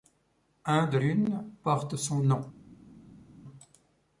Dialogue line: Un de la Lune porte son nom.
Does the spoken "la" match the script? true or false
false